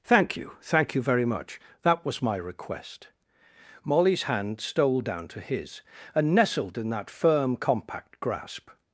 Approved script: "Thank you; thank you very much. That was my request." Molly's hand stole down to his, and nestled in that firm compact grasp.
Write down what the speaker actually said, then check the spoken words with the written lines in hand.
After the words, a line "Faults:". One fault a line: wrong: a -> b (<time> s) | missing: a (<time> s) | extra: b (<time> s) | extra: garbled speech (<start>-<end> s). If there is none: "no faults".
"Thank you; thank you very much. That was my request." Molly's hand stole down to his, and nestled in that firm compact grasp.
Faults:
no faults